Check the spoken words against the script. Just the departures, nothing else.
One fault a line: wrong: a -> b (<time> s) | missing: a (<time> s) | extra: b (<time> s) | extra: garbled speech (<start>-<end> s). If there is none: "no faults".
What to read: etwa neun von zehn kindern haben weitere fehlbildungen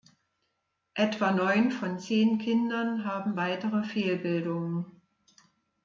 no faults